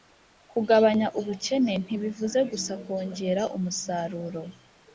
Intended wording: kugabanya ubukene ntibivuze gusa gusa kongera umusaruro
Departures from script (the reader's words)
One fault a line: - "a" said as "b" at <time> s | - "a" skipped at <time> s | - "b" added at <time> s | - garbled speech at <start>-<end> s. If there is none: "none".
- "gusa" skipped at 2.7 s